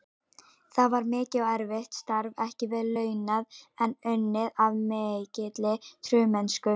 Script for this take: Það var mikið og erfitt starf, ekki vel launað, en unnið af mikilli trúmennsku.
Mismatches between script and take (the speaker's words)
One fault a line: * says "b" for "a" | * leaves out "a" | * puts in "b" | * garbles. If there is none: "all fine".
all fine